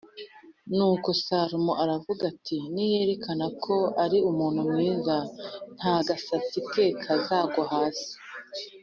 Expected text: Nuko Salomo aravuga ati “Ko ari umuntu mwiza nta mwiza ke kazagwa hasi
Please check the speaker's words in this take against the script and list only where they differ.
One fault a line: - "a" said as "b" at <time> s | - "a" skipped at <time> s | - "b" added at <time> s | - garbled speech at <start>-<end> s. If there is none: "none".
- "Niyerekana" added at 2.7 s
- "mwiza" said as "gasatsi" at 6.1 s